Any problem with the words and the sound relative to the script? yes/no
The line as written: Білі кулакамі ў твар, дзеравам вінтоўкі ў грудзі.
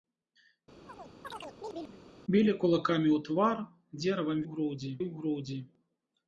yes